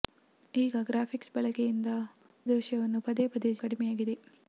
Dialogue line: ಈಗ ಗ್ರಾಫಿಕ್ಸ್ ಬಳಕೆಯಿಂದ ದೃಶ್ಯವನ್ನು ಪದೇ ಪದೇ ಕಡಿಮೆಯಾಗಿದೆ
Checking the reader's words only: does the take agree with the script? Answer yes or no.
yes